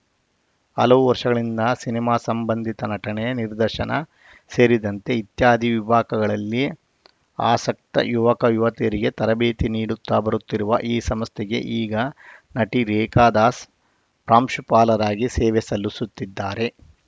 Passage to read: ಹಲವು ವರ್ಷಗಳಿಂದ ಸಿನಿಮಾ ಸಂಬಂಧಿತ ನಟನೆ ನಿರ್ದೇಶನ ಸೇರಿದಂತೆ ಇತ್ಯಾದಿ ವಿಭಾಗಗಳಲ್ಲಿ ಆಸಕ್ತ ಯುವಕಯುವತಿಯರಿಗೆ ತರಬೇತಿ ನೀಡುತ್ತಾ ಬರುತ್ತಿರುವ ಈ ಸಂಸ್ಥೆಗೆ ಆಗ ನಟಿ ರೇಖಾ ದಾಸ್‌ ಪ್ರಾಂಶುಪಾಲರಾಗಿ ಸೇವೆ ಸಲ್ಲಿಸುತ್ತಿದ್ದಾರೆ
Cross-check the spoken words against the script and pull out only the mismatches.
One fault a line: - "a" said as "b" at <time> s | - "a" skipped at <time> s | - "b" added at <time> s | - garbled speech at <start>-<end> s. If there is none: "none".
- "ಆಗ" said as "ಈಗ" at 11.8 s